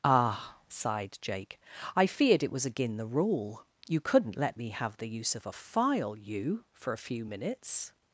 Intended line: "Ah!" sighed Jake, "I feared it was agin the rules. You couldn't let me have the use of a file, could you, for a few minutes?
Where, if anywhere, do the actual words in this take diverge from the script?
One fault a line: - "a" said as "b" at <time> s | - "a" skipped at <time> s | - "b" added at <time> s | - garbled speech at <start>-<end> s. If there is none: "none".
- "rules" said as "rule" at 3.0 s
- "could" skipped at 6.2 s